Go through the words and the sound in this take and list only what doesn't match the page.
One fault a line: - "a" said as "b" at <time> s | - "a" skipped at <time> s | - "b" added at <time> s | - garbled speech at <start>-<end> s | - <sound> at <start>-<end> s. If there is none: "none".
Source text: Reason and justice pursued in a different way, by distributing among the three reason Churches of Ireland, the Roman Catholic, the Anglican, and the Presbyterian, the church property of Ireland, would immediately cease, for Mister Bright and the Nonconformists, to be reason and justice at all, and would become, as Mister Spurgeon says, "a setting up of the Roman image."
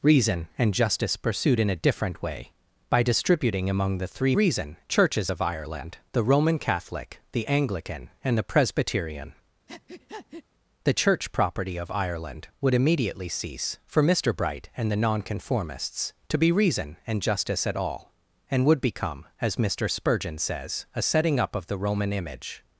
- breath at 9.7-10.4 s